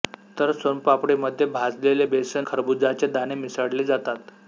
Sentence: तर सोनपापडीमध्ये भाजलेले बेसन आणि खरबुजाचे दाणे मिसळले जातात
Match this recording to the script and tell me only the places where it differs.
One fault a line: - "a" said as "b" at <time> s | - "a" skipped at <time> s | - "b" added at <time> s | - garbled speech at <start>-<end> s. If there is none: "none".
- "आणि" skipped at 2.5 s